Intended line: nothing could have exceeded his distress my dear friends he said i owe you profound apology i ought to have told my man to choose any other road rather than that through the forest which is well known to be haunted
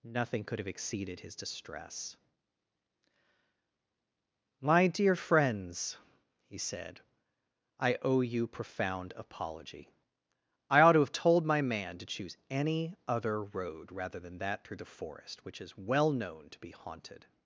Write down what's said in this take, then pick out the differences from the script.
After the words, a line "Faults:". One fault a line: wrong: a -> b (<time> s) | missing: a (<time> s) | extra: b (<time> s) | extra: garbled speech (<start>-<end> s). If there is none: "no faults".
nothing could have exceeded his distress my dear friends he said i owe you profound apology i ought to have told my man to choose any other road rather than that through the forest which is well known to be haunted
Faults:
no faults